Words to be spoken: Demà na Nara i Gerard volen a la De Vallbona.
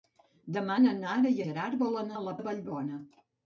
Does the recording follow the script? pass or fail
pass